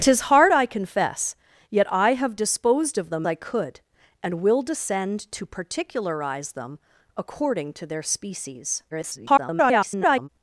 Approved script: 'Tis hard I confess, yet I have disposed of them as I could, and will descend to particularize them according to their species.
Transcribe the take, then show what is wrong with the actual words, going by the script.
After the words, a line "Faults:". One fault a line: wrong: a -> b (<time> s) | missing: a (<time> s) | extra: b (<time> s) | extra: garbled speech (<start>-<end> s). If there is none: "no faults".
'Tis hard I confess, yet I have disposed of them I could, and will descend to particularize them according to their species. [garbled]
Faults:
missing: as (3.3 s)
extra: garbled speech (8.9-10.3 s)